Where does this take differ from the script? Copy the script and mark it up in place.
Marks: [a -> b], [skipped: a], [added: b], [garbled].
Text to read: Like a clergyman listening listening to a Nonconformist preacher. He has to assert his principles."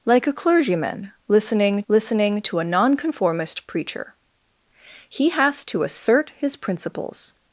Like a clergyman listening listening to a Nonconformist preacher. He has to assert his principles."